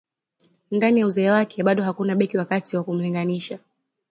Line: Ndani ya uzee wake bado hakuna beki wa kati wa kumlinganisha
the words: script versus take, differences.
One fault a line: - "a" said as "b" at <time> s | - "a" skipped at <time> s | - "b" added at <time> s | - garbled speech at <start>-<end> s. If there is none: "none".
none